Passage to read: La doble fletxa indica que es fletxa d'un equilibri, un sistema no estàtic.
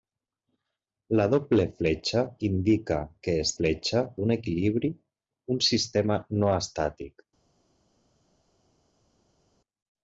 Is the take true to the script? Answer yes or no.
yes